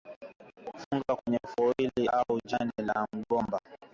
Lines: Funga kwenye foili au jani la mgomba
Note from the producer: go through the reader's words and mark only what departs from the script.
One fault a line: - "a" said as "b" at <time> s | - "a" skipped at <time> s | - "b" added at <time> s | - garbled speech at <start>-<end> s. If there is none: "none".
none